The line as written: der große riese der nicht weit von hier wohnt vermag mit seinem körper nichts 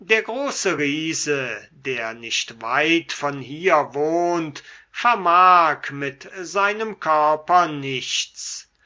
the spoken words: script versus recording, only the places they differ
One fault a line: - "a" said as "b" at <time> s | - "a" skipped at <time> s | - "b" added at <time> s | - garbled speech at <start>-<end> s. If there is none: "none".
none